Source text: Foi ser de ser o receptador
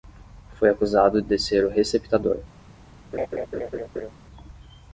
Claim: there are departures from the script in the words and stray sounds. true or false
true